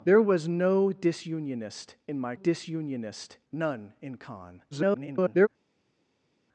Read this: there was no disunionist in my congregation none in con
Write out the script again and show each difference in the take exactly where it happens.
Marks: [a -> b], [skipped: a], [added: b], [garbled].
there was no disunionist in my [congregation -> disunionist] none in con [garbled]